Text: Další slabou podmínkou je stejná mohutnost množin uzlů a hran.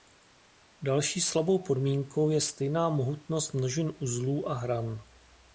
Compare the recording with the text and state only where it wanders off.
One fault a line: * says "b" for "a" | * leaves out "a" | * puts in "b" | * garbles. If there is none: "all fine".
all fine